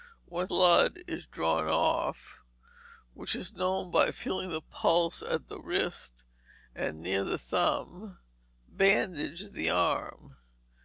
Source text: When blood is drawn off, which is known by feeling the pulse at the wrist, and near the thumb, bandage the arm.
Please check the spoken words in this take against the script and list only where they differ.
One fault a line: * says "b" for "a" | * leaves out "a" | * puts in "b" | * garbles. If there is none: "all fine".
all fine